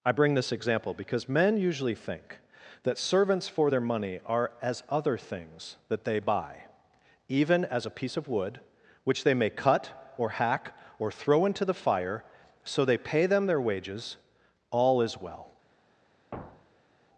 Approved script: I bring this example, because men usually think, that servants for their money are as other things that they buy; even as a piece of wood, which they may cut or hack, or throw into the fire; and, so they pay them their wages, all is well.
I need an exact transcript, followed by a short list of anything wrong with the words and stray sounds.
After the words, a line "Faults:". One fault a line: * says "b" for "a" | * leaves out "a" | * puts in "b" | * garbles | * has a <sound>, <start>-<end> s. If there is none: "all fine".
I bring this example, because men usually think, that servants for their money are as other things that they buy; even as a piece of wood, which they may cut or hack, or throw into the fire; so they pay them their wages, all is well.
Faults:
* leaves out "and"
* has a thud, 16.3-17.0 s